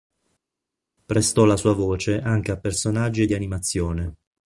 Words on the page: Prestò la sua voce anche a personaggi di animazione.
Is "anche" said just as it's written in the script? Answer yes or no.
yes